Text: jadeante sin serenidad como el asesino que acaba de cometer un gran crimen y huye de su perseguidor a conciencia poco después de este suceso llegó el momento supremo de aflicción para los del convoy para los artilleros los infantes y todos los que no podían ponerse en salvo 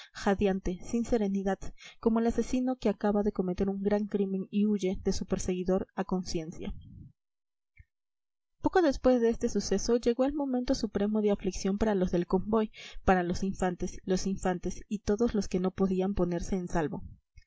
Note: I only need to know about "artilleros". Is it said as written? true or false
false